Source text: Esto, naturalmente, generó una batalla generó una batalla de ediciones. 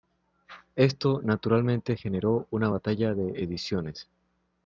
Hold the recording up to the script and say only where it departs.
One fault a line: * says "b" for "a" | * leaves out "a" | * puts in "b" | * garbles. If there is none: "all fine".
* leaves out "generó una batalla"